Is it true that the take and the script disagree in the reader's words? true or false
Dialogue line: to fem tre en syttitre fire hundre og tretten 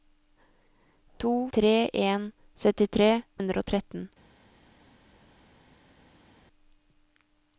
true